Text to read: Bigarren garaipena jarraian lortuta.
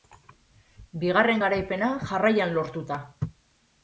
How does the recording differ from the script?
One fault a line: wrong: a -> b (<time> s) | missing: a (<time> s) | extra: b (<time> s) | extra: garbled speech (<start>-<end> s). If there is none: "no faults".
no faults